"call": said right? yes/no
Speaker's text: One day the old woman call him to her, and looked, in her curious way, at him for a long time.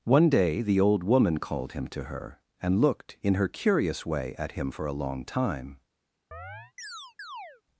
no